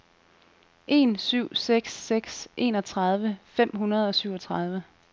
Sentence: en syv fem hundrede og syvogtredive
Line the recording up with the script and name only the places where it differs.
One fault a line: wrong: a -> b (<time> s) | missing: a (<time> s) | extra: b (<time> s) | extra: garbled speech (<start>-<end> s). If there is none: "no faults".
extra: seks seks enogtredive (1.6 s)